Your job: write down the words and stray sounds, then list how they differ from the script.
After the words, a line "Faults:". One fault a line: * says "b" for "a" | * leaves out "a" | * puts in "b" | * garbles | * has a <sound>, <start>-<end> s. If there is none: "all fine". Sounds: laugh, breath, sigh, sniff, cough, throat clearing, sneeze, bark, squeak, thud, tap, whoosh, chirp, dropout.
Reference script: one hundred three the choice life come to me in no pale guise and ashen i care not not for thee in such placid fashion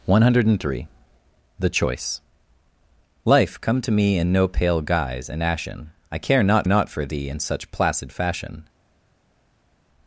one hundred three the choice life come to me in no pale guise and ashen i care not not for thee in such placid fashion
Faults:
all fine